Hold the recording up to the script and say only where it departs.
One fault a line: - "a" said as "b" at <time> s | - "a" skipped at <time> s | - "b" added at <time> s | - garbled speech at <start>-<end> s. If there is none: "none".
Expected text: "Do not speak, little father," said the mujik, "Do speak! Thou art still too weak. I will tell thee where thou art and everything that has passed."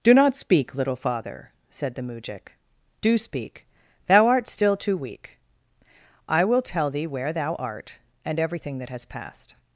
none